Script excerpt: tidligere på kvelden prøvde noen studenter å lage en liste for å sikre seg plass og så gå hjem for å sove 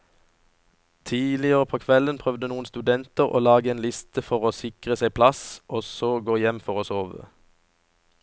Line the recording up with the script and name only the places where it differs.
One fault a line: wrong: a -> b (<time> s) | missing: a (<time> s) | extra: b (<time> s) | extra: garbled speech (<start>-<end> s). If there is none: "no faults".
no faults